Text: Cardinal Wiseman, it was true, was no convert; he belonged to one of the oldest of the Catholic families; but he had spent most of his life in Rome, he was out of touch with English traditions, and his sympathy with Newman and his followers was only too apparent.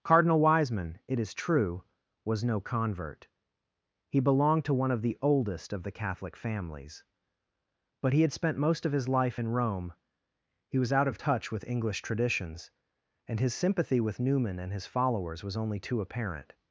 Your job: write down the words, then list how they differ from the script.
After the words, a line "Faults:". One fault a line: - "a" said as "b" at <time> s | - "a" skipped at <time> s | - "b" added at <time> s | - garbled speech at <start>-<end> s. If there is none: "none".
Cardinal Wiseman, it is true, was no convert; he belonged to one of the oldest of the Catholic families; but he had spent most of his life in Rome, he was out of touch with English traditions, and his sympathy with Newman and his followers was only too apparent.
Faults:
- "was" said as "is" at 1.2 s